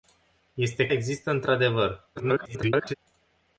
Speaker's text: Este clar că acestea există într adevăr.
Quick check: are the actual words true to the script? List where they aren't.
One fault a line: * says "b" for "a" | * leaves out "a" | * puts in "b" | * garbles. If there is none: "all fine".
* leaves out "clar că acestea"
* garbles